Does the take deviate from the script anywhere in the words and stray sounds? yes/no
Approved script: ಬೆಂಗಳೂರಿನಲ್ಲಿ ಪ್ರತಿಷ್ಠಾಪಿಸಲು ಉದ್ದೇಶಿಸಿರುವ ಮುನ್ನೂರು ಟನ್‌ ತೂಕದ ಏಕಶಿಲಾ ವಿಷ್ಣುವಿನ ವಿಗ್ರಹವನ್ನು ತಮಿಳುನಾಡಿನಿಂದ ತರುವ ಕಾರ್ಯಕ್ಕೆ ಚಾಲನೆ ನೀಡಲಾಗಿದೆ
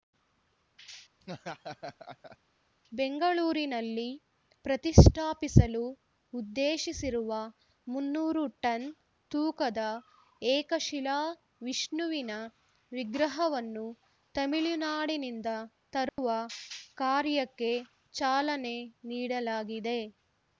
yes